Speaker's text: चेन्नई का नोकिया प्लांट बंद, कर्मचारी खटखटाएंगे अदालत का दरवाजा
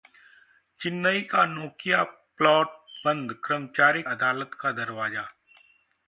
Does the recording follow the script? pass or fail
fail